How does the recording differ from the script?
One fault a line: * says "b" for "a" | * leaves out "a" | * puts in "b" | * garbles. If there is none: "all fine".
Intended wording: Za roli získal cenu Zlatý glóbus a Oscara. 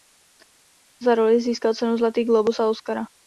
all fine